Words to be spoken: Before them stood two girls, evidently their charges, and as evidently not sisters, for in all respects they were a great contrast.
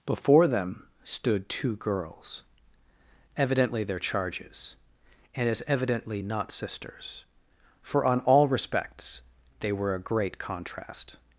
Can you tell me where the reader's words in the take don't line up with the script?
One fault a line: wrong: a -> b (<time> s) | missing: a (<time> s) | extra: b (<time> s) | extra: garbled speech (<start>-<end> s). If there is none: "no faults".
wrong: in -> on (8.1 s)